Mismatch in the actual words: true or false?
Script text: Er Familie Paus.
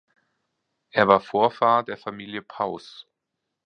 true